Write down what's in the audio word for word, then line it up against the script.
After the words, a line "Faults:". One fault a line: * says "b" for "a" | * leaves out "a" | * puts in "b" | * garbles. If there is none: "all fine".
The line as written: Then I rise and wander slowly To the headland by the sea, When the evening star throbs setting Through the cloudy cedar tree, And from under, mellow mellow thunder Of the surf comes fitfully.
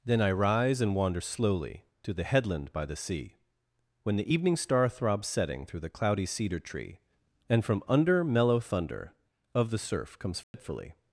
Then I rise and wander slowly To the headland by the sea, When the evening star throbs setting Through the cloudy cedar tree, And from under, mellow thunder Of the surf comes fitfully.
Faults:
* leaves out "mellow"